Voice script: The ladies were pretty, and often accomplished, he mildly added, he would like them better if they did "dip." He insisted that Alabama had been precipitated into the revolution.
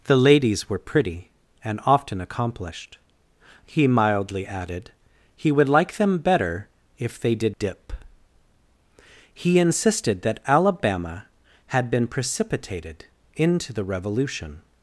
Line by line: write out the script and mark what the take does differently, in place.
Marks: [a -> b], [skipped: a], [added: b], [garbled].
The ladies were pretty, and often accomplished, he mildly added, he would like them better if they did "dip." He insisted that Alabama had been precipitated into the revolution.